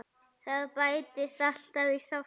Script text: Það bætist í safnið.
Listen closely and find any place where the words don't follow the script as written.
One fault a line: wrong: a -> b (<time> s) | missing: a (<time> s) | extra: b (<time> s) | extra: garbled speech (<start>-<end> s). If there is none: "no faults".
extra: alltaf (1.5 s)